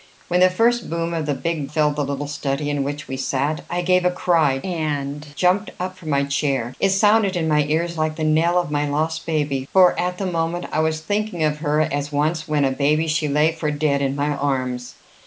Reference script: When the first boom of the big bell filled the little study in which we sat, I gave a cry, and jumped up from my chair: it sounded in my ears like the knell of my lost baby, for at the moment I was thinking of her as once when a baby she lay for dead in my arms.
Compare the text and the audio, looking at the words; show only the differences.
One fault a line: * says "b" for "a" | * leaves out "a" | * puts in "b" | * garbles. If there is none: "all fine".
* leaves out "bell"